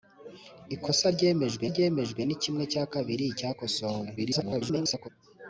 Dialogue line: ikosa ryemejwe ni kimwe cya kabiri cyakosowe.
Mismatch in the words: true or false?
true